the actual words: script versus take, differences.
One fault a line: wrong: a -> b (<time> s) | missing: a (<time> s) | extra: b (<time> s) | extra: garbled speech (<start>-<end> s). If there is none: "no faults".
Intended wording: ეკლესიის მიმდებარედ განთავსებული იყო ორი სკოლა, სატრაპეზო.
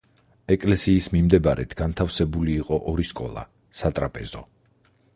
no faults